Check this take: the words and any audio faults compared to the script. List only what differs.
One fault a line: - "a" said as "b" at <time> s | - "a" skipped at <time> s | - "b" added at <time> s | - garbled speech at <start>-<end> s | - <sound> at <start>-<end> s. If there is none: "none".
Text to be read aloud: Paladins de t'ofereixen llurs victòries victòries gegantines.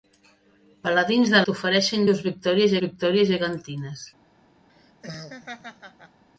- laugh at 4.7-6.2 s